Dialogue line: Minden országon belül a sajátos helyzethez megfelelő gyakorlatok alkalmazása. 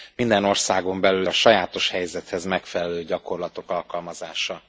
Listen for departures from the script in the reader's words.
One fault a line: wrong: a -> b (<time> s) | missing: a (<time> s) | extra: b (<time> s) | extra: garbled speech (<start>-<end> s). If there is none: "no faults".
no faults